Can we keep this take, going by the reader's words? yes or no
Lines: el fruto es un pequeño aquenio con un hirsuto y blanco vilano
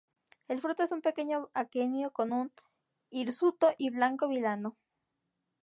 yes